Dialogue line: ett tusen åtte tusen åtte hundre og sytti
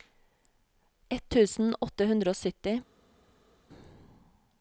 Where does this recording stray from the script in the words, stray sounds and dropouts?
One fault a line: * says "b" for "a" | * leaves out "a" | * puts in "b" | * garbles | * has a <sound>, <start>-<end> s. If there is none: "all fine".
* leaves out "tusen åtte"